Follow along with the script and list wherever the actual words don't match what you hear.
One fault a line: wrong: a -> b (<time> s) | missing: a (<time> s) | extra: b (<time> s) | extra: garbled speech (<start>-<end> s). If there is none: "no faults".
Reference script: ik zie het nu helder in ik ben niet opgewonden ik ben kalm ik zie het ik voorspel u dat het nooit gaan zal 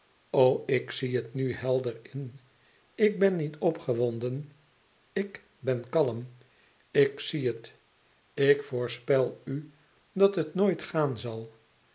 no faults